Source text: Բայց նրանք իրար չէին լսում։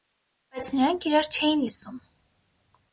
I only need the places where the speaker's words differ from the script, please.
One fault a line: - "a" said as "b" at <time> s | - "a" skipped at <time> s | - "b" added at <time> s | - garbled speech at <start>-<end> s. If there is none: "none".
none